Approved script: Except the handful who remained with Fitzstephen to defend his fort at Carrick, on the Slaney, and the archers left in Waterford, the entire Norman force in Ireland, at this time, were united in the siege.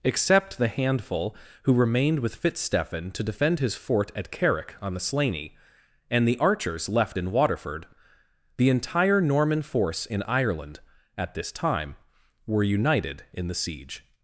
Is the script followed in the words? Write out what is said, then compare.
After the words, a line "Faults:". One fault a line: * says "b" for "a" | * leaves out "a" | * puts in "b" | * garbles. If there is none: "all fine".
Except the handful who remained with Fitzstephen to defend his fort at Carrick, on the Slaney, and the archers left in Waterford, the entire Norman force in Ireland, at this time, were united in the siege.
Faults:
all fine